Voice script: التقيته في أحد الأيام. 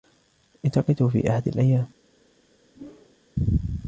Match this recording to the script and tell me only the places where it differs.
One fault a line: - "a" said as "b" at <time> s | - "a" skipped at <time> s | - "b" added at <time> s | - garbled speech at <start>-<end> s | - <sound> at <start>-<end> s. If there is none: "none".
- whoosh at 2.7-3.2 s